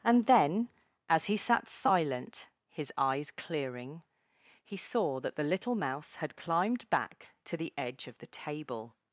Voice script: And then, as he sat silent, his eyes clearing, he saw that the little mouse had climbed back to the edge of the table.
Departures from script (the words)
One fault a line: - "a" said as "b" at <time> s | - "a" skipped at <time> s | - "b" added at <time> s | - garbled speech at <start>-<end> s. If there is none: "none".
none